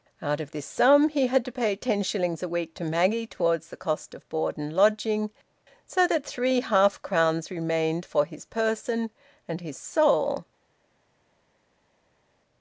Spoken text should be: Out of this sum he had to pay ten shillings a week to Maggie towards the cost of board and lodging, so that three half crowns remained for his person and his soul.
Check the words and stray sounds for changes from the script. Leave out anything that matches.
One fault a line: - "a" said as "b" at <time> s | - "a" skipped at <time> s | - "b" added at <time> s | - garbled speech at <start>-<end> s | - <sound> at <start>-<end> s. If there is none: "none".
none